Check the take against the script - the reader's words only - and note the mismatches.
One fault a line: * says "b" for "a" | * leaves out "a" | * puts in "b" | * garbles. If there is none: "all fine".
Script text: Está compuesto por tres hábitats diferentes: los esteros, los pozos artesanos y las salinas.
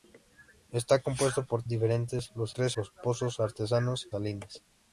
* leaves out "tres hábitats"
* says "tres" for "esteros"
* leaves out "y las"